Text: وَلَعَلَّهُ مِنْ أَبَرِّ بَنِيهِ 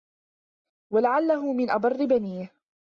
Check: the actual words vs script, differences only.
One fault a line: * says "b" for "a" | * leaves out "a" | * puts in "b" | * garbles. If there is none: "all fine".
all fine